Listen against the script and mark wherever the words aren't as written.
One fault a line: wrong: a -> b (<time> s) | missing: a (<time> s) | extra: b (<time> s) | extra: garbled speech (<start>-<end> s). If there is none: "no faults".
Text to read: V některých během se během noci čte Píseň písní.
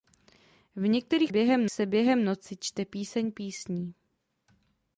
no faults